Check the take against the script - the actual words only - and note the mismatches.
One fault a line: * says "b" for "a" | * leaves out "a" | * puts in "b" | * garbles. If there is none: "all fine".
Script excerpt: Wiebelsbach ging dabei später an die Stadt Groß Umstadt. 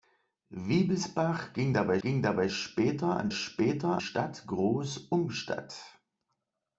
* puts in "ging dabei"
* says "später" for "die"